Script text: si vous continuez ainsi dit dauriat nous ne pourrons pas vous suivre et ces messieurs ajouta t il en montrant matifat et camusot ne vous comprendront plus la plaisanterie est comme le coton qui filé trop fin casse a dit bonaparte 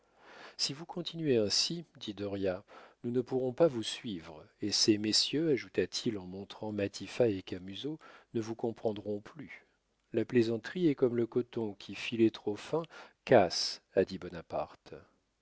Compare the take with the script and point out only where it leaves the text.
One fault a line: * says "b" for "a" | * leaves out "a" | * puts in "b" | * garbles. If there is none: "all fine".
all fine